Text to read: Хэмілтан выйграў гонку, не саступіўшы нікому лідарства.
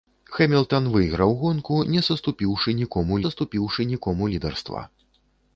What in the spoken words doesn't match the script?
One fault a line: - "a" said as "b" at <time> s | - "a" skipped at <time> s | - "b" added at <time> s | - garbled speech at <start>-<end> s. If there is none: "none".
- "саступіўшы нікому" added at 3.2 s